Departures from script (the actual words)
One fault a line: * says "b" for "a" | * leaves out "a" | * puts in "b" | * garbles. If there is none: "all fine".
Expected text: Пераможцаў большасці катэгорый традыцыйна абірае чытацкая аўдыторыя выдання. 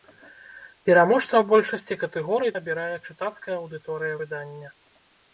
* leaves out "традыцыйна"